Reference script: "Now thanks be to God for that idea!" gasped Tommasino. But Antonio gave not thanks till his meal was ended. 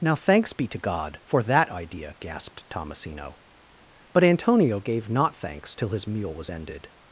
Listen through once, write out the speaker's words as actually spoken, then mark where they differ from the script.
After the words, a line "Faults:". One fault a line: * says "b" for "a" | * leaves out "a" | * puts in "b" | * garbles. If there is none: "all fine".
"Now thanks be to God for that idea!" gasped Tommasino. But Antonio gave not thanks till his meal was ended.
Faults:
all fine